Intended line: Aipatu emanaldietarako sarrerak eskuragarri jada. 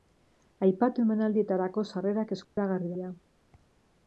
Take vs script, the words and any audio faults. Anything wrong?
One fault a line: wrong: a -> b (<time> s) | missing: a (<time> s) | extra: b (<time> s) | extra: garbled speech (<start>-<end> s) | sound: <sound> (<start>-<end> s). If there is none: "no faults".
sound: dropout (2.4-2.6 s)